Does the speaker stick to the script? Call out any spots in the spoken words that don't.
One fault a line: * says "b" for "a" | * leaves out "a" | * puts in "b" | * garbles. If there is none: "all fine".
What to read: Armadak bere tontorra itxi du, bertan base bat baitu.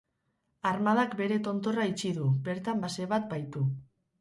all fine